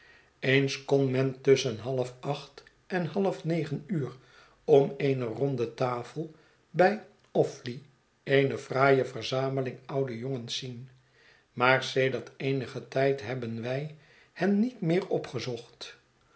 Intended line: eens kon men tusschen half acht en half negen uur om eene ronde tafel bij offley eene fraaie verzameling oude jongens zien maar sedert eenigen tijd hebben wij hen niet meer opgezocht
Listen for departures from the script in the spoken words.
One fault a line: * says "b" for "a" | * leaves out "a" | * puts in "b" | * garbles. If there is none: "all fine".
all fine